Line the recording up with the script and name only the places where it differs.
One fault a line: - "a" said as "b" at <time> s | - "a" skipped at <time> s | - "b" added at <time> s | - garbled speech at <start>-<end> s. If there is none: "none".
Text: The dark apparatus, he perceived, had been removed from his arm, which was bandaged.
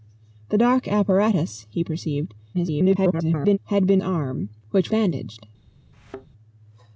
- garbled speech at 2.5-3.6 s
- "removed from his" skipped at 4.0 s
- "was" skipped at 4.9 s